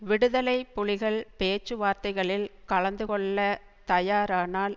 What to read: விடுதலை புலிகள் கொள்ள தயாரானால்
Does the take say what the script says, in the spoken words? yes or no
no